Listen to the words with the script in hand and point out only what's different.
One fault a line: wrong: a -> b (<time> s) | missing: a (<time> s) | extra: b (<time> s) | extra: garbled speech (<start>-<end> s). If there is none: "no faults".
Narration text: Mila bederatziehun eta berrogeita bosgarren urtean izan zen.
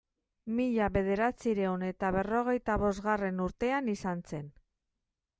no faults